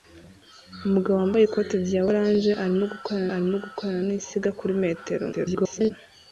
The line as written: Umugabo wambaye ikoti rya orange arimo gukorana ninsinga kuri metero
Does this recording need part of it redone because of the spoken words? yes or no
yes